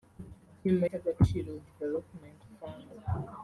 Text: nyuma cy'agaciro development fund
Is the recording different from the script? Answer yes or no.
no